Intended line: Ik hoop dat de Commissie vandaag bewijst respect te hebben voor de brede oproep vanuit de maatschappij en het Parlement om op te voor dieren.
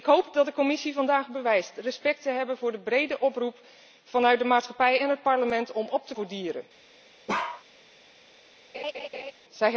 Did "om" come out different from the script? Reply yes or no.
no